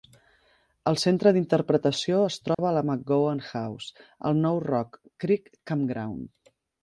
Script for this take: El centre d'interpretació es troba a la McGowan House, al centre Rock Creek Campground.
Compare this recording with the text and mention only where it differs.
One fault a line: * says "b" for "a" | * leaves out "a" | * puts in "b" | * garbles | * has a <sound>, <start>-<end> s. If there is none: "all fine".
* has a dropout, 2.5-2.6 s
* says "nou" for "centre"